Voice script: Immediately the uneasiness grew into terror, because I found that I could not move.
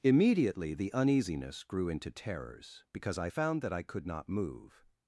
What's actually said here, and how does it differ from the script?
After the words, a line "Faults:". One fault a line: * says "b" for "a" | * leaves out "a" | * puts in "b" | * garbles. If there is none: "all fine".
Immediately the uneasiness grew into terrors, because I found that I could not move.
Faults:
* says "terrors" for "terror"